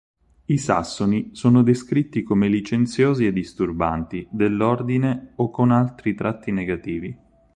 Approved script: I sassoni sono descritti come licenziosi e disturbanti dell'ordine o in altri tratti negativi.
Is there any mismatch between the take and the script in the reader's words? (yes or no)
yes